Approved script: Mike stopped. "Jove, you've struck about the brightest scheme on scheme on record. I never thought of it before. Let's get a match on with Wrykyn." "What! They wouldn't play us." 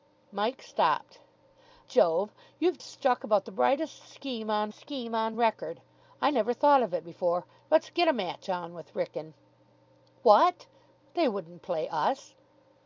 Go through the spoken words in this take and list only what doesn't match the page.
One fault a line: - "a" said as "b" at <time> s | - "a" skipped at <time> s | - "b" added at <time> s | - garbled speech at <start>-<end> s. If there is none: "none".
none